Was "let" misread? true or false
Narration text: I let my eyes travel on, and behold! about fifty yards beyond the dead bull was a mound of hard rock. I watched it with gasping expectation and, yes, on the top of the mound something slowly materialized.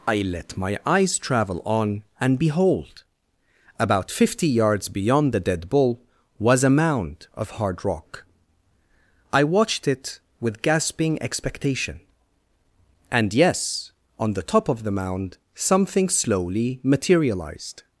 false